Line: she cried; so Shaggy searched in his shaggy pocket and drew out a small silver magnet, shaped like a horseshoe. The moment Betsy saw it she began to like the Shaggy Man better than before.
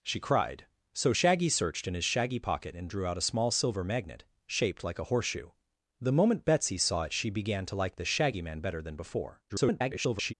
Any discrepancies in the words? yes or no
yes